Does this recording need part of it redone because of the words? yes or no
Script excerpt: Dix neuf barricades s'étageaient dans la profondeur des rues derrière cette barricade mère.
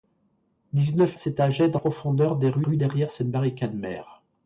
yes